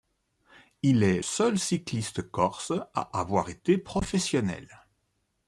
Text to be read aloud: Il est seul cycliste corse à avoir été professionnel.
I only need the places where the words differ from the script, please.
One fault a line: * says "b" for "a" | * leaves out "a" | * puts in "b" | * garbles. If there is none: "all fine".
all fine